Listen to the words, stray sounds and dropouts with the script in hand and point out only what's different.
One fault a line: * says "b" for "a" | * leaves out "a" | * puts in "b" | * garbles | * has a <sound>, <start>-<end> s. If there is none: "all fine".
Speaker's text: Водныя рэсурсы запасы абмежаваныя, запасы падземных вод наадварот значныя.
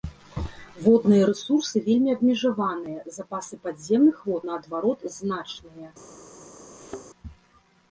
* says "вельмі" for "запасы"
* has a thud, 6.7-7.1 s